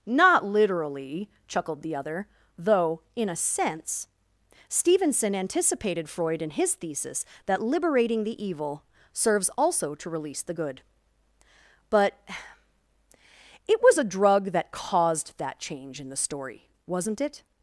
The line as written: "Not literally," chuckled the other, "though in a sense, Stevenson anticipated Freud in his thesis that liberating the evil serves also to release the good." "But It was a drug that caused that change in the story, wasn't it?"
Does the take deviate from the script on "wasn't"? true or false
false